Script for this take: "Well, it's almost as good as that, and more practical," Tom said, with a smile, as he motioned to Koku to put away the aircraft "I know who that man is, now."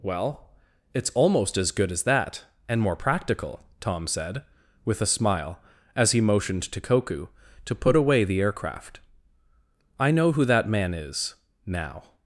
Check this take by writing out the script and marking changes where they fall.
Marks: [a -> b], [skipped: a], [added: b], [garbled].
"Well, it's almost as good as that, and more practical," Tom said, with a smile, as he motioned to Koku to put away the aircraft "I know who that man is, now."